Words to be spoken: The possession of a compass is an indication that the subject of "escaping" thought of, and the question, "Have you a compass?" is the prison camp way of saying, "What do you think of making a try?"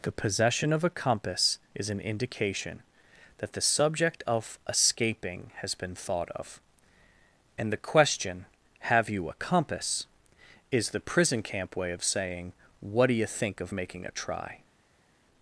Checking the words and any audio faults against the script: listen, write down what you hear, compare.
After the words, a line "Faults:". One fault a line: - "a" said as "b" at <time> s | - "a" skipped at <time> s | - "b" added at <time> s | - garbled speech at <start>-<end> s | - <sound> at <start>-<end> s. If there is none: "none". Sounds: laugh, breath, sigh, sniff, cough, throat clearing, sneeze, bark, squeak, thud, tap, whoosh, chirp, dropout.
The possession of a compass is an indication that the subject of "escaping" has been thought of, and the question, "Have you a compass?" is the prison camp way of saying, "What do you think of making a try?"
Faults:
- "has been" added at 5.6 s